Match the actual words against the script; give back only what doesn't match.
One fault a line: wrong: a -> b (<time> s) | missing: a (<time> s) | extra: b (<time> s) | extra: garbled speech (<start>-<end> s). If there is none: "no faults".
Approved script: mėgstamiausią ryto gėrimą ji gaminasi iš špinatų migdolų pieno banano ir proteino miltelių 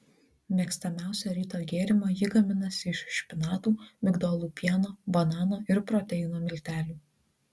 no faults